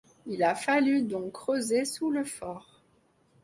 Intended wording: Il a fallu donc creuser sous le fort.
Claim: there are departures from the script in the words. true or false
false